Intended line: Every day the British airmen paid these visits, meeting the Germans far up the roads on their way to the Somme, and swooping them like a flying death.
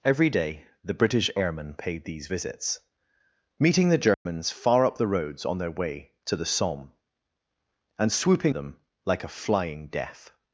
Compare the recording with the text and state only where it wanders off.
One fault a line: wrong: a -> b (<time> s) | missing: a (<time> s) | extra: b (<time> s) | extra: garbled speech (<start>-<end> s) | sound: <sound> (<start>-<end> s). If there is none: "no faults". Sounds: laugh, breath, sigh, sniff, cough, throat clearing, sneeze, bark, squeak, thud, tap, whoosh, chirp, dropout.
sound: dropout (4.1-4.3 s)